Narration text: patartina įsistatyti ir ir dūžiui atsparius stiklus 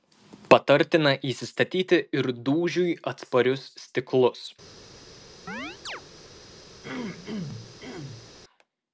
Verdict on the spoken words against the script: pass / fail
fail